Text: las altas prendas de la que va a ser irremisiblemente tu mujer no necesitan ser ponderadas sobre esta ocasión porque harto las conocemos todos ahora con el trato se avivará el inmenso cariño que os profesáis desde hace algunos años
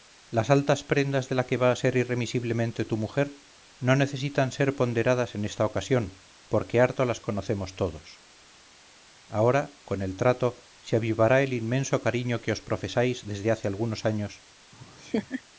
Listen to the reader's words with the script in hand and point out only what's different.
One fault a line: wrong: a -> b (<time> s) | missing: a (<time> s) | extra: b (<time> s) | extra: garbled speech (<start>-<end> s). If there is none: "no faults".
wrong: sobre -> en (5.3 s)